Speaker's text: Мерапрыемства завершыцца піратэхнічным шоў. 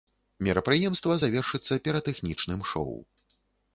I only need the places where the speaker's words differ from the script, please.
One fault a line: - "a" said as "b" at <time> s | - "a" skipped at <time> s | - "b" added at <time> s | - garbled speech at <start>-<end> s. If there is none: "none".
none